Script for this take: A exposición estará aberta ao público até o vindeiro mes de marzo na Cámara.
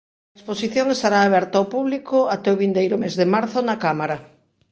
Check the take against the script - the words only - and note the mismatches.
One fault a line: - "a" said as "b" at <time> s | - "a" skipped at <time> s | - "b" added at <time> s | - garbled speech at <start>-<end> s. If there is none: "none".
none